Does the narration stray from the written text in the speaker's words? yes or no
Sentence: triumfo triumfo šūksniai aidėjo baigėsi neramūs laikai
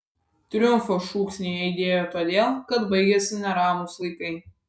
yes